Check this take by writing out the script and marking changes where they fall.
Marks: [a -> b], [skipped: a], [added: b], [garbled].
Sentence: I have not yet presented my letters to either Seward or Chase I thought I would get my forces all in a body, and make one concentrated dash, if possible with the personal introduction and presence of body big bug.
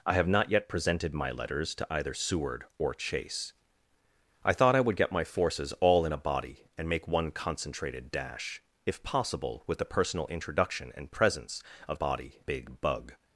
I have not yet presented my letters to either Seward or Chase I thought I would get my forces all in a body, and make one concentrated dash, if possible with the personal introduction and presence of body big bug.